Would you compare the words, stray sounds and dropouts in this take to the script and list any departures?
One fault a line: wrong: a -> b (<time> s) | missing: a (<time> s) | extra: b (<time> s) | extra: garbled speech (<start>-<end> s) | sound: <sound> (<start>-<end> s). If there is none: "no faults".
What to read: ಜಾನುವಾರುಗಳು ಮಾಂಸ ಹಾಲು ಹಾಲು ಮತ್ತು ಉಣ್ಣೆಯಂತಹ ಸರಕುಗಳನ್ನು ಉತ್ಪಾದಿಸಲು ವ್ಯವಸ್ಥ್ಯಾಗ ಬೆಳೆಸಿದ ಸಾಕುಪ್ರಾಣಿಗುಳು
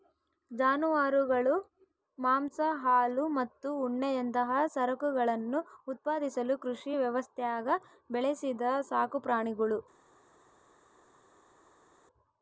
missing: ಹಾಲು (3.2 s)
extra: ಕೃಷಿ (6.6 s)